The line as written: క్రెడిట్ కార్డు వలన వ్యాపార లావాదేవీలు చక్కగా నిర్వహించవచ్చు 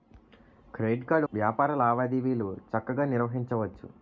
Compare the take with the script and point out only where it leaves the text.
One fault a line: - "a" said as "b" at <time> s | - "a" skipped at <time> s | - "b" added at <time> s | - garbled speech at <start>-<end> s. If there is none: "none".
- "వలన" skipped at 1.3 s